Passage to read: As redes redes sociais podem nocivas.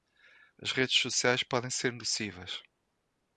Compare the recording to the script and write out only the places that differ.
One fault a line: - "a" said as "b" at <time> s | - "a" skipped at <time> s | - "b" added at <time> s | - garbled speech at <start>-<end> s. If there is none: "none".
- "redes" skipped at 1.0 s
- "ser" added at 1.7 s